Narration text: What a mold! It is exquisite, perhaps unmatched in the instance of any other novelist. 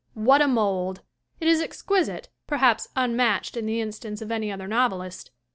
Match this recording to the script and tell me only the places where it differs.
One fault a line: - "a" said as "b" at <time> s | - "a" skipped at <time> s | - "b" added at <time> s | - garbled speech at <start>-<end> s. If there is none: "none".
none